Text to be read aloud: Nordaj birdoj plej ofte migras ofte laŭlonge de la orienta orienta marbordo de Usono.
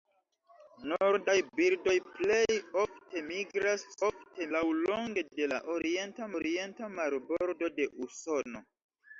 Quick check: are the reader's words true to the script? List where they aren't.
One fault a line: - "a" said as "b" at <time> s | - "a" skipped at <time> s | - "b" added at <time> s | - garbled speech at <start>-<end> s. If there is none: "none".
none